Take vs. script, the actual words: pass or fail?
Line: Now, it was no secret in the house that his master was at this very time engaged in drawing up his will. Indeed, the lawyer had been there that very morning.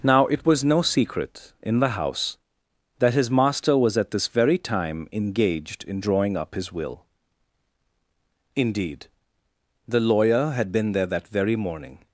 pass